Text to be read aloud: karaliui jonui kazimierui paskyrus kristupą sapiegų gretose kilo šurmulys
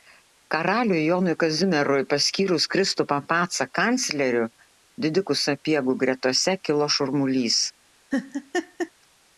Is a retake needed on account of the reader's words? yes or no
yes